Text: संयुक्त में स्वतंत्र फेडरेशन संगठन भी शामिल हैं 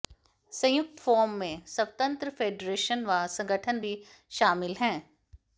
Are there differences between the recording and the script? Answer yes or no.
yes